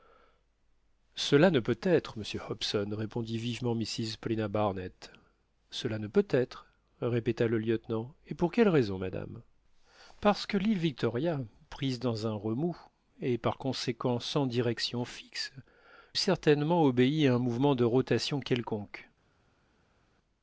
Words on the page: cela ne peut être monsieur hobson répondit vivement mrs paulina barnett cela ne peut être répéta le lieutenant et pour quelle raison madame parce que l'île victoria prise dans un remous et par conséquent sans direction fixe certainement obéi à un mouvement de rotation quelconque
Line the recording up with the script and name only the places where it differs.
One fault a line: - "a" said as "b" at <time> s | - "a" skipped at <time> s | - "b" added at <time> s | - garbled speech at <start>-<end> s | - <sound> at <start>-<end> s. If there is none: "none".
none